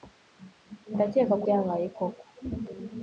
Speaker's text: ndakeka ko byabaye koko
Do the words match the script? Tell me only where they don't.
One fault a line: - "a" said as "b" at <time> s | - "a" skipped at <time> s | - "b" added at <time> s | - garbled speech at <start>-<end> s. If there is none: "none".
none